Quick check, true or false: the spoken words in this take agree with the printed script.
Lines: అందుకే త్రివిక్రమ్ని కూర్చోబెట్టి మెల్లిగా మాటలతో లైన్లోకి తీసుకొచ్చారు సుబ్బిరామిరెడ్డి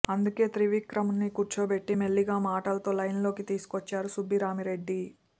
true